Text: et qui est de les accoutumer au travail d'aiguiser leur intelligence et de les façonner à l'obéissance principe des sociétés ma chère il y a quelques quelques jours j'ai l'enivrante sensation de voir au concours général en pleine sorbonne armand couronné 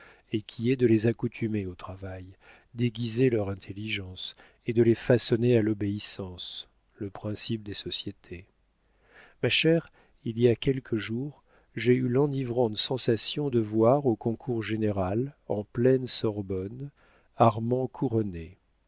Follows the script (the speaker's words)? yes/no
no